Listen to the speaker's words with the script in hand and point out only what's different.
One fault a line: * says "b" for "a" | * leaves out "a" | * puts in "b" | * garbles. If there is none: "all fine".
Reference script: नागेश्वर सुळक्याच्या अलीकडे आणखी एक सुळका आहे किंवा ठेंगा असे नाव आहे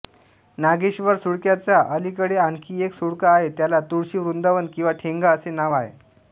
* puts in "त्याला तुळशी वृंदावन"